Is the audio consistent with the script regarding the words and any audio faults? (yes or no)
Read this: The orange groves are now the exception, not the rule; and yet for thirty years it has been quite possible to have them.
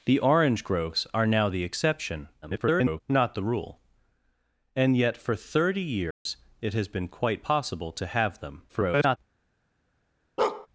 no